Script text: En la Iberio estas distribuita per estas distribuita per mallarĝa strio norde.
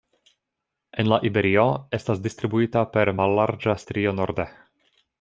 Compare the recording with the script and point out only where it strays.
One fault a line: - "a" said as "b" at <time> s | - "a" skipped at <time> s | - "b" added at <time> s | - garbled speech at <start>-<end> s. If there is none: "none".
- "estas distribuita per" skipped at 3.1 s